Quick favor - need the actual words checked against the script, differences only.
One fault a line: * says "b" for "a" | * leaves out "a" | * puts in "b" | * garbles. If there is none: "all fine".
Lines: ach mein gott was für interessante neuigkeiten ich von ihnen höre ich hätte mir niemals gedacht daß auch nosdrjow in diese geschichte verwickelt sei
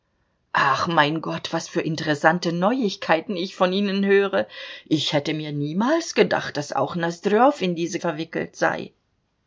* leaves out "geschichte"